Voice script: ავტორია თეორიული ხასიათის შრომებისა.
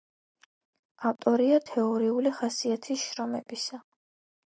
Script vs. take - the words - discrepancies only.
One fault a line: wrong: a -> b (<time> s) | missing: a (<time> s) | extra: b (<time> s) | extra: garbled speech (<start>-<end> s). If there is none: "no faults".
no faults